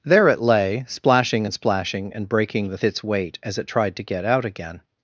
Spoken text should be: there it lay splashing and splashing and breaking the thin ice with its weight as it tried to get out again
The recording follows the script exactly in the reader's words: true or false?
false